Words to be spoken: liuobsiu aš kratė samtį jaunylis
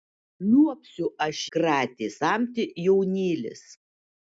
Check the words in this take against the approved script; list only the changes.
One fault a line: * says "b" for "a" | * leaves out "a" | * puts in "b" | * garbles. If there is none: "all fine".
all fine